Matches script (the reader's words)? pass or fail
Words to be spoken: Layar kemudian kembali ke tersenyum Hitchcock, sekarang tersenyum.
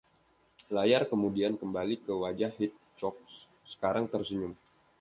fail